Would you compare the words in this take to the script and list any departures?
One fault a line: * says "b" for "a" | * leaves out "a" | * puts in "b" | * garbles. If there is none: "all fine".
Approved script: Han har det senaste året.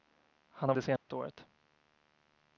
all fine